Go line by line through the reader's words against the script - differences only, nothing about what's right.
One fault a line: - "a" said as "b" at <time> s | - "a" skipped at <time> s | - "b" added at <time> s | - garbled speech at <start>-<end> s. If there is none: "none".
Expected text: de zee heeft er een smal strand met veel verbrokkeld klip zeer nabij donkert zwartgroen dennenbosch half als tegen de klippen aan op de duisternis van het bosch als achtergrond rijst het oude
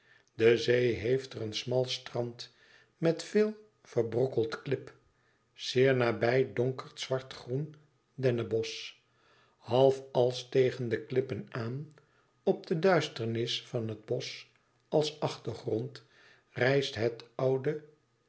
none